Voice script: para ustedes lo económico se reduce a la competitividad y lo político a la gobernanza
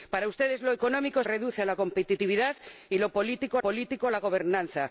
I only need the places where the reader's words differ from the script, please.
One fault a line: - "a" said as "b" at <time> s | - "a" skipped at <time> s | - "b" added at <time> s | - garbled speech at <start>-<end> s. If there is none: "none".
- "se" skipped at 1.2 s
- "político" added at 3.6 s